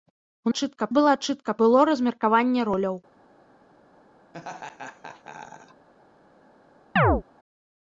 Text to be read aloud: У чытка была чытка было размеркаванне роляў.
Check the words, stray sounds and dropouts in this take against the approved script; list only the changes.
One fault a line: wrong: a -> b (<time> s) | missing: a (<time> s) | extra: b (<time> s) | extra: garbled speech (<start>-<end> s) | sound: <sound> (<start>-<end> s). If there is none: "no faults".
sound: laugh (4.3-5.9 s)
sound: chirp (7.0-7.2 s)